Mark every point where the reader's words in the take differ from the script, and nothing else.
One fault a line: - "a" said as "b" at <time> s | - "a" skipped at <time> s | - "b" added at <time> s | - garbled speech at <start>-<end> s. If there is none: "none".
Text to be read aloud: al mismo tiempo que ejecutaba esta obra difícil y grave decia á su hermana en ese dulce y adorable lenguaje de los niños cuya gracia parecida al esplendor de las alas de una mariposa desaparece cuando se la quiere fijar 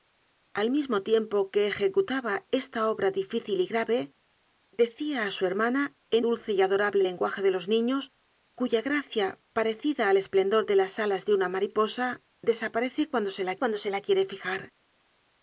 - "ese" skipped at 6.2 s
- "cuando se la" added at 13.6 s